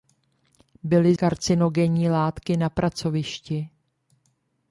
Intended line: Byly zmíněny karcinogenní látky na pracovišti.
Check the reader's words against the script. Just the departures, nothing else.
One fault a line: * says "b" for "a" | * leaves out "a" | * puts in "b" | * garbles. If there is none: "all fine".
* leaves out "zmíněny"